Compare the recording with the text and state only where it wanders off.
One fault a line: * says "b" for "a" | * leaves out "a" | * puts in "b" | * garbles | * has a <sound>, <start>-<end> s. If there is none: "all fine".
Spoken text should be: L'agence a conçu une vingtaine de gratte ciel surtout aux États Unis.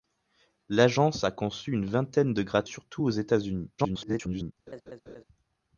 * leaves out "ciel"
* garbles
* has a laugh, 4.7-5.2 s